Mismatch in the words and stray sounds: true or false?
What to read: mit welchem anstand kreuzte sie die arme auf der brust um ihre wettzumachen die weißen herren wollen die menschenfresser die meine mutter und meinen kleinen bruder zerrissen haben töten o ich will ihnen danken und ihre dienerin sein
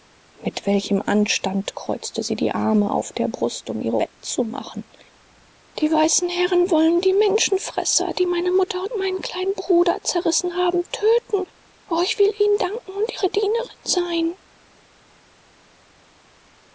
false